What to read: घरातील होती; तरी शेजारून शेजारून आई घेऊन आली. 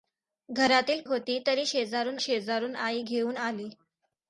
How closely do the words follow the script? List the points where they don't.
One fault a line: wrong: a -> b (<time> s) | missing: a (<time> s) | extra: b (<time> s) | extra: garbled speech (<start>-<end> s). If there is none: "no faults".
no faults